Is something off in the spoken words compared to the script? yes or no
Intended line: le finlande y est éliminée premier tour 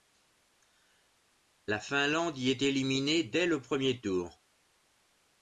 yes